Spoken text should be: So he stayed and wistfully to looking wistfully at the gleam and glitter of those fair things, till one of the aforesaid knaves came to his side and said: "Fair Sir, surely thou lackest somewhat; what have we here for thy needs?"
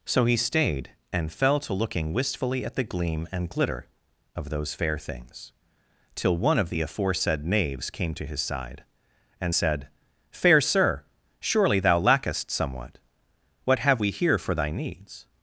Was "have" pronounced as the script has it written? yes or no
yes